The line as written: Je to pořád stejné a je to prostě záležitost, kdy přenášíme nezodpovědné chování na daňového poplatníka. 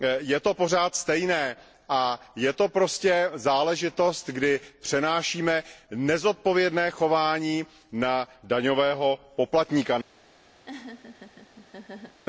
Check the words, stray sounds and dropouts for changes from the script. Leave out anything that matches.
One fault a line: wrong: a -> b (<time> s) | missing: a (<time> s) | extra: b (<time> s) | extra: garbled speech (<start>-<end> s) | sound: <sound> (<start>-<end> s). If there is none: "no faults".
sound: laugh (10.7-12.2 s)